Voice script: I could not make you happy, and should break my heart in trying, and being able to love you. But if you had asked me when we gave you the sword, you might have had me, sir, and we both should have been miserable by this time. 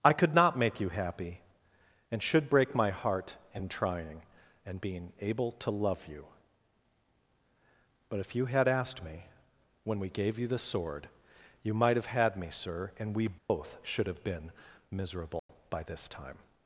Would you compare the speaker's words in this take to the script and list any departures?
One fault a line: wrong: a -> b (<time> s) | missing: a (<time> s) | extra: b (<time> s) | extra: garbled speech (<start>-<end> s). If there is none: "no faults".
no faults